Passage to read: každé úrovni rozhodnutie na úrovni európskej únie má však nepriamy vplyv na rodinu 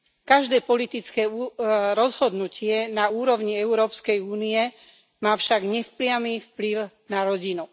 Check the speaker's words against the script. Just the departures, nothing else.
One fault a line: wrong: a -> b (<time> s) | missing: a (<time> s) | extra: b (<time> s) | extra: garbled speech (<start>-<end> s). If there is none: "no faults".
wrong: úrovni -> politické (0.6 s)